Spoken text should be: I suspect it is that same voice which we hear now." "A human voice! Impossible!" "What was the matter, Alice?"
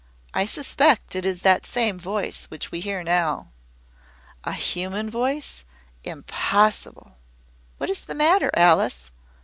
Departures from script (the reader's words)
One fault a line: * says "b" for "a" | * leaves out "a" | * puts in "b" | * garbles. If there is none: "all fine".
* says "is" for "was"